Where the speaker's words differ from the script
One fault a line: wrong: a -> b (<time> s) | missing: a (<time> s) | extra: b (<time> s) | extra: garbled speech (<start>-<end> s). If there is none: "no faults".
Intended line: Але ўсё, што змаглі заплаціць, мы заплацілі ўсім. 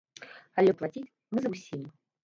missing: ўсё што змаглі (0.7 s)
missing: заплацілі (1.4 s)